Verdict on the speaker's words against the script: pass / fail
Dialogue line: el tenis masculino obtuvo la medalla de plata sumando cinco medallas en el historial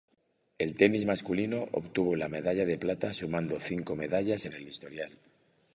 pass